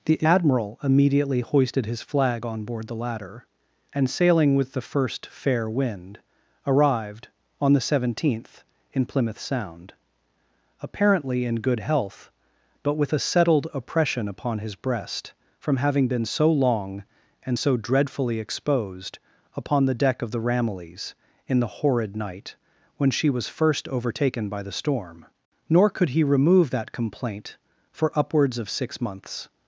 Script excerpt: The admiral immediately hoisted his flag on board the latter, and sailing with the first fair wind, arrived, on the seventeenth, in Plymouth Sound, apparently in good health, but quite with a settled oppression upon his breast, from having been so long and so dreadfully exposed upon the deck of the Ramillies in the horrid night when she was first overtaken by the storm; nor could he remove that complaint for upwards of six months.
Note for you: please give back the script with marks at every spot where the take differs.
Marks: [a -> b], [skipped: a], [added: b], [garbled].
The admiral immediately hoisted his flag on board the latter, and sailing with the first fair wind, arrived, on the seventeenth, in Plymouth Sound, apparently in good health, but [skipped: quite] with a settled oppression upon his breast, from having been so long and so dreadfully exposed upon the deck of the Ramillies in the horrid night when she was first overtaken by the storm; nor could he remove that complaint for upwards of six months.